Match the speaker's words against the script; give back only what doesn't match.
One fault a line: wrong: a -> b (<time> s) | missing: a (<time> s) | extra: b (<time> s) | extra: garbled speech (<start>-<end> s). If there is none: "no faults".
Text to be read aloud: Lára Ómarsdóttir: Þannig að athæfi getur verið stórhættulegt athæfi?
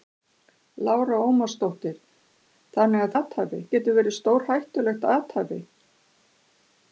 no faults